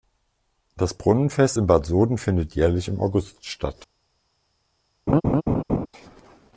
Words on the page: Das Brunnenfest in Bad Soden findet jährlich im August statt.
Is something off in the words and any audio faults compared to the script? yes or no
yes